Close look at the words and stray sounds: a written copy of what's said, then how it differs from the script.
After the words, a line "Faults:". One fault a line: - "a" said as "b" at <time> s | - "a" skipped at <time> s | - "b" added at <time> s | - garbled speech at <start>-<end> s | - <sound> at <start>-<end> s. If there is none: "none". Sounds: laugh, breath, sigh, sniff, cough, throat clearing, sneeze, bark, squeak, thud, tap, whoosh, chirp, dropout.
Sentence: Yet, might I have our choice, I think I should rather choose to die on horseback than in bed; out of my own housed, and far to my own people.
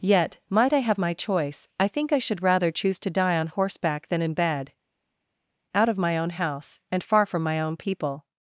Yet, might I have my choice, I think I should rather choose to die on horseback than in bed; out of my own house, and far from my own people.
Faults:
- "our" said as "my" at 1.0 s
- "housed" said as "house" at 6.3 s
- "to" said as "from" at 7.3 s